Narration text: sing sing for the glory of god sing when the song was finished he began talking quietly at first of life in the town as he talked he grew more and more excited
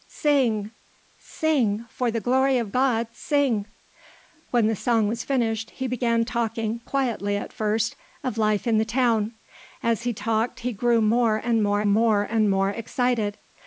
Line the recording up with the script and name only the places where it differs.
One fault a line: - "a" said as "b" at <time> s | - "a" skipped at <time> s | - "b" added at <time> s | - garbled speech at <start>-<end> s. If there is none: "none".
- "more and more" added at 11.8 s